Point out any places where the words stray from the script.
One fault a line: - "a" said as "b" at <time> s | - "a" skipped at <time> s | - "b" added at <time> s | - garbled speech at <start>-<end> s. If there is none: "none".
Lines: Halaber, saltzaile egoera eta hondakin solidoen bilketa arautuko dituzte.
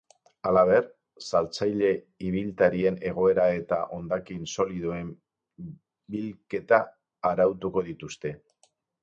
- "ibiltarien" added at 2.3 s